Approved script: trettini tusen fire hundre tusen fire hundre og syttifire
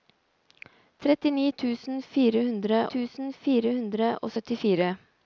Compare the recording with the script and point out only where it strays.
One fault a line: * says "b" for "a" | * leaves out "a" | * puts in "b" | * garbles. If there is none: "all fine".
all fine